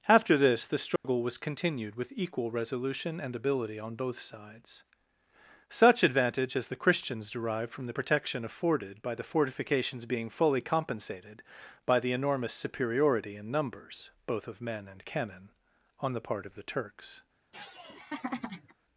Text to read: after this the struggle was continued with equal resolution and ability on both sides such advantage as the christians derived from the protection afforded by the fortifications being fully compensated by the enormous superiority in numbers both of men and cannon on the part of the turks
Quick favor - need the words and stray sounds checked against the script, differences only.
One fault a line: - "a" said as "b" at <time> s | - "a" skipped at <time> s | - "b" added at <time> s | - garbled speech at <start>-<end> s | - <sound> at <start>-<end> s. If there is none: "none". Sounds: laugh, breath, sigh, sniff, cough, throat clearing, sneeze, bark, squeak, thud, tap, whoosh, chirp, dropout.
- dropout at 1.0-1.0 s
- laugh at 17.5-18.7 s